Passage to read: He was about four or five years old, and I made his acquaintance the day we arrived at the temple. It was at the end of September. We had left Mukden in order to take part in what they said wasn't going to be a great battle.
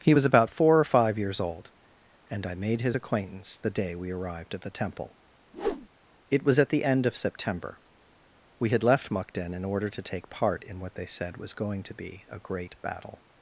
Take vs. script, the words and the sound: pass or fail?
fail